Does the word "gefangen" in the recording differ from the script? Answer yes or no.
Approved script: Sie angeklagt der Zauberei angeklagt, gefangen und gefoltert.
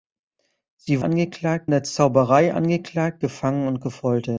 no